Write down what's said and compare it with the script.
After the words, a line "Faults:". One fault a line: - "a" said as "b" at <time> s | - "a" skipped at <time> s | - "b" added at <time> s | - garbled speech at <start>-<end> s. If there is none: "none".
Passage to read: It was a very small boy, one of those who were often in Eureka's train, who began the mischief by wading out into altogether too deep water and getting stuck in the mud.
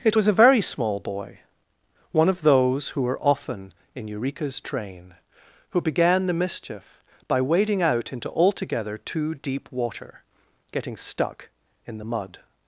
It was a very small boy, one of those who were often in Eureka's train, who began the mischief by wading out into altogether too deep water getting stuck in the mud.
Faults:
- "and" skipped at 10.2 s